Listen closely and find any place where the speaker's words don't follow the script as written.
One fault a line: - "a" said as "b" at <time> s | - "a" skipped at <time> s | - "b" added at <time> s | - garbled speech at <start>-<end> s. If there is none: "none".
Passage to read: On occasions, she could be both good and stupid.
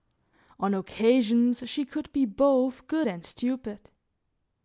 none